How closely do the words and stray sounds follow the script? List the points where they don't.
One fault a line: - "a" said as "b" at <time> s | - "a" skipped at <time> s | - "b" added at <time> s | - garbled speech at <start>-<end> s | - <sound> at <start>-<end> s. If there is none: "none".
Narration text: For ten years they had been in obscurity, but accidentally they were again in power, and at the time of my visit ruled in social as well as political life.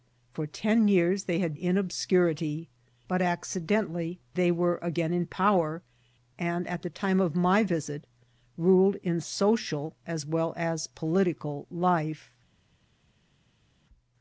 - "been" skipped at 1.6 s